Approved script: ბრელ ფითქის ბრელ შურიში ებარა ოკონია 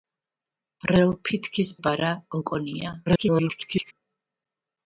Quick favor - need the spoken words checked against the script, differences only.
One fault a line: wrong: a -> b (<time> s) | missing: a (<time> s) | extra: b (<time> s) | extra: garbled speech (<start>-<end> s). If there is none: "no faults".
missing: ბრელ შურიში (1.7 s)
extra: garbled speech (3.1-3.9 s)